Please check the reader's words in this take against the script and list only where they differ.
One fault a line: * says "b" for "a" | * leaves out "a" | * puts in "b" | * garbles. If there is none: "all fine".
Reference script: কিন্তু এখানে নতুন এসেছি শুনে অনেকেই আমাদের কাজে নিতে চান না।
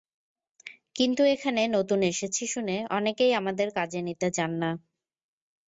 all fine